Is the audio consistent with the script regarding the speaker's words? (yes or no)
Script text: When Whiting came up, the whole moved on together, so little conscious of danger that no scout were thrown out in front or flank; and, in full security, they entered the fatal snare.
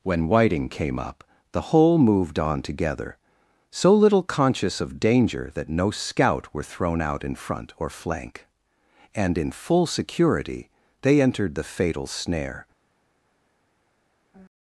yes